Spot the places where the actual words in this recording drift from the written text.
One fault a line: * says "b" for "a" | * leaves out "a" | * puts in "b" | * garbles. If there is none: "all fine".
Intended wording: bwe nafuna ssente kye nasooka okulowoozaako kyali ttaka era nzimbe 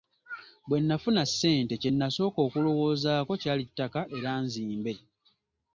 all fine